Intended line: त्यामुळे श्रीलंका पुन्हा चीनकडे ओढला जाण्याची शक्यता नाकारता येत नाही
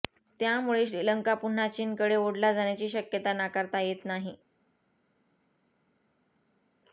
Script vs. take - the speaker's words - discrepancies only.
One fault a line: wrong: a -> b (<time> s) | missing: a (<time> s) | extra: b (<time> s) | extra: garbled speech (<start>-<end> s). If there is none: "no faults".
no faults